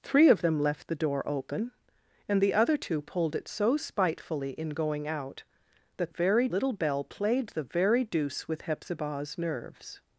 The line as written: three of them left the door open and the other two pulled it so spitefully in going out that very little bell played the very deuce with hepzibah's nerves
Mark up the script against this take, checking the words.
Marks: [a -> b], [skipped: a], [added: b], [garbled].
three of them left the door open and the other two pulled it so spitefully in going out that very little bell played the very deuce with hepzibah's nerves